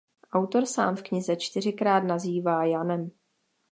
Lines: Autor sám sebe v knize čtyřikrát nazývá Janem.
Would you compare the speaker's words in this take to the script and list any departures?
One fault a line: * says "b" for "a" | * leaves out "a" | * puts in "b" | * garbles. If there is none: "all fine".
* leaves out "sebe"